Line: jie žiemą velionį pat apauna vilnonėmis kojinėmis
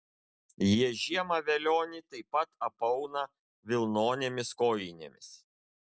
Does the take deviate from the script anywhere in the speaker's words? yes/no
yes